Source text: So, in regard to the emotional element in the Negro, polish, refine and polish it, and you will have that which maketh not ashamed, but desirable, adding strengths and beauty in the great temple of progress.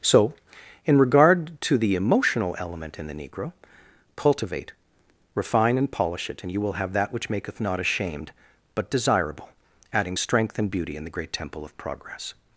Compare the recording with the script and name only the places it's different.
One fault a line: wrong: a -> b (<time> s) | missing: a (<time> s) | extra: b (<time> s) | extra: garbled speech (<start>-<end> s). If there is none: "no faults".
wrong: polish -> cultivate (4.2 s)
wrong: strengths -> strength (10.1 s)